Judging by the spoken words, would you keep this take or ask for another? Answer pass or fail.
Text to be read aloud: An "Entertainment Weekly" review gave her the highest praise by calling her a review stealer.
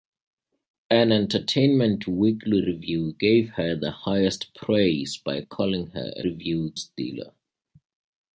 pass